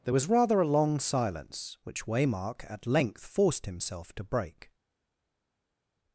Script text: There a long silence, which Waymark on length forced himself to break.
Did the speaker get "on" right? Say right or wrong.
wrong